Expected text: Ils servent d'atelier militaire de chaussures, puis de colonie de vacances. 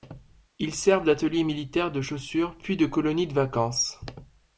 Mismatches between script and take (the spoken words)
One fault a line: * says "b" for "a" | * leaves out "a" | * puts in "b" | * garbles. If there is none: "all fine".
all fine